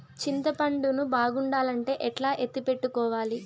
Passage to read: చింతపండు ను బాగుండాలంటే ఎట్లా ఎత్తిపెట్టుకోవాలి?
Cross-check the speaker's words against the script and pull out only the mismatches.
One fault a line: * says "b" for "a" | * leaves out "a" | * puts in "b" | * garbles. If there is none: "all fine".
all fine